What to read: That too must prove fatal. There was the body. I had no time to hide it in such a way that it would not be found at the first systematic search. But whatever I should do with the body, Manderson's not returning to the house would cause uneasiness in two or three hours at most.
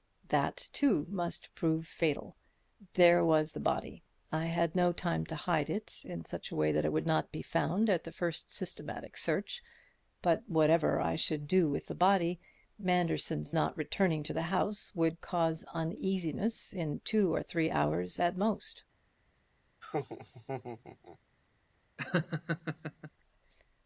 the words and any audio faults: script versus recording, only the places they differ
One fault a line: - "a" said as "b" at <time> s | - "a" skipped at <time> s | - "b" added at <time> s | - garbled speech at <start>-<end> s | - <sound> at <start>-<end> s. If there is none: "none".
- laugh at 19.8-21.2 s
- laugh at 22.0-23.1 s